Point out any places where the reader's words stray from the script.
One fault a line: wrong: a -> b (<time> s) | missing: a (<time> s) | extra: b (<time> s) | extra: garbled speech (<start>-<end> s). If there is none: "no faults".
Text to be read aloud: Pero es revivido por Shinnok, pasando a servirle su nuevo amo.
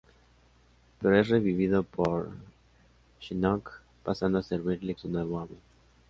no faults